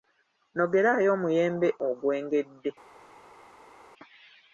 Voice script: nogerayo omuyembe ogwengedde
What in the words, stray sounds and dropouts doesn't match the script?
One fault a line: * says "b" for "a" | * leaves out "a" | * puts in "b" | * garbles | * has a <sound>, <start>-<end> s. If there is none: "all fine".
all fine